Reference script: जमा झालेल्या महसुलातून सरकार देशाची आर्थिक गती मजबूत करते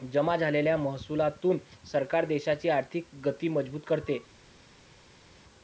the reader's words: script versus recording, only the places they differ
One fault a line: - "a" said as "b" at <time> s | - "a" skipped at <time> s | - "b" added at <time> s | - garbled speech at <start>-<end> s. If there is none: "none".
none